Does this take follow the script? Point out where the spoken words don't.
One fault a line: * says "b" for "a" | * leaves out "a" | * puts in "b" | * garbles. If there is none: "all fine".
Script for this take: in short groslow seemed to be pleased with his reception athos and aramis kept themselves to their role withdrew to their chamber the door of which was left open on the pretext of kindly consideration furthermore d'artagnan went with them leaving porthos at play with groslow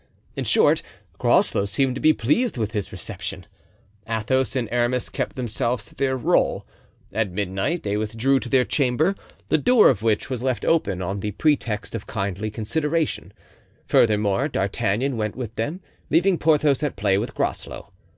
* puts in "at midnight they"